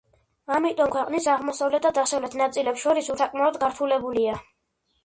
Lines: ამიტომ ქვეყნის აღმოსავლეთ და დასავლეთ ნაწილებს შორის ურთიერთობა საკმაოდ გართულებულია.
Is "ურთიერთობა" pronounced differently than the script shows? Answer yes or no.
yes